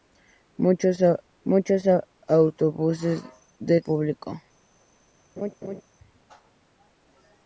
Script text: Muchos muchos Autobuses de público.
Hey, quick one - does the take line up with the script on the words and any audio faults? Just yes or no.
no